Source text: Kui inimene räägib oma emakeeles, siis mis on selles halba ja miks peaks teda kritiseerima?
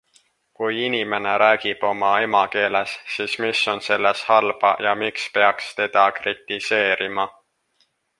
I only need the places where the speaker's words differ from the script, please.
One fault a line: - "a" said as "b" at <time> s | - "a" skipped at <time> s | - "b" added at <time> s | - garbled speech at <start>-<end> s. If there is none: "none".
none